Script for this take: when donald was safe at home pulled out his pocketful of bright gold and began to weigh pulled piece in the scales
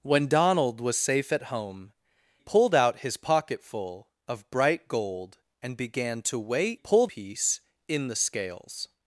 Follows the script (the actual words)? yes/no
yes